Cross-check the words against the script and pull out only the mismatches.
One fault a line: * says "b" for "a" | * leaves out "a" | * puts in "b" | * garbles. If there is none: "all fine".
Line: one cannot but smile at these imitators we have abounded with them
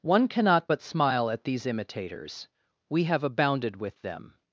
all fine